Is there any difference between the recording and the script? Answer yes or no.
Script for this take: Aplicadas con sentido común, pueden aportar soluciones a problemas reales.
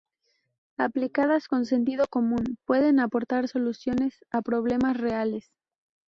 no